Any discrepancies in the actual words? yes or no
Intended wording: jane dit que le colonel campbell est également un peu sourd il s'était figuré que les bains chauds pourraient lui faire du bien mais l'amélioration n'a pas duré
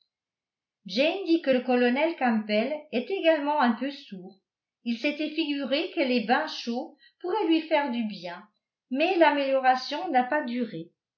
no